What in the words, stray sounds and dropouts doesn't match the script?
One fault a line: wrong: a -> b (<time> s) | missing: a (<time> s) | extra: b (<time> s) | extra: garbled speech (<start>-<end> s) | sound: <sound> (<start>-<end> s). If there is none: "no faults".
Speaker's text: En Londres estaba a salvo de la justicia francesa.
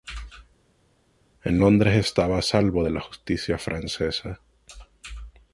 no faults